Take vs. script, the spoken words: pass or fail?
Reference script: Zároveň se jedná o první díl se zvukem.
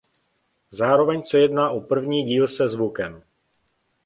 pass